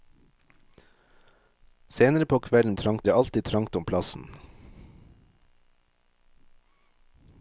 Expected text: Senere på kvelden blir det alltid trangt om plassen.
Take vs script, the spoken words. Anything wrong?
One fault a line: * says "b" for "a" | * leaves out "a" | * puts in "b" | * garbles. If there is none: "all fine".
* says "trangt" for "blir"